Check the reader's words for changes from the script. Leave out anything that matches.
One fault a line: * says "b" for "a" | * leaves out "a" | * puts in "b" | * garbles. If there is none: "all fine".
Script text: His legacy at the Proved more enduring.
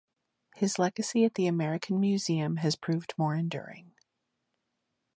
* puts in "American Museum has"